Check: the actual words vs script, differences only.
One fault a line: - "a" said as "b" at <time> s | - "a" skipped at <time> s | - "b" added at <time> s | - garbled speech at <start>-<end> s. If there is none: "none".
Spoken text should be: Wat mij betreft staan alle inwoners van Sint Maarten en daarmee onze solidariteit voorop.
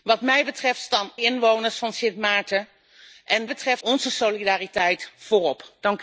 - "alle" skipped at 1.1 s
- "daarmee" said as "betreft" at 3.5 s